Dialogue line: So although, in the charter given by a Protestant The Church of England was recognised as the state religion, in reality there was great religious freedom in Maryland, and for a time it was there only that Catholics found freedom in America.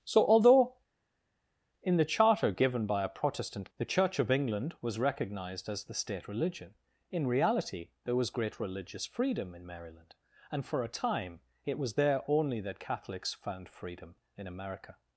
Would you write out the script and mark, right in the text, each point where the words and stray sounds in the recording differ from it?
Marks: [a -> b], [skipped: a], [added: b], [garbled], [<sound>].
So although, in the charter given by a Protestant The Church of England was recognised as the state religion, in reality there was great religious freedom in Maryland, and for a time it was there only that Catholics found freedom in America.